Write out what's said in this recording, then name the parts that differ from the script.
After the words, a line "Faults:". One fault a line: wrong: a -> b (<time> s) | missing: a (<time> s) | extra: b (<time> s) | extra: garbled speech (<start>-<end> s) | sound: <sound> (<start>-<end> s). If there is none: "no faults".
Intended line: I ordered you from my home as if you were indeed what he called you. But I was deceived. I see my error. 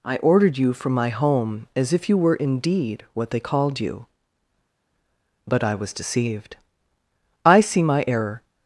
I ordered you from my home as if you were indeed what they called you. But I was deceived. I see my error.
Faults:
wrong: he -> they (3.3 s)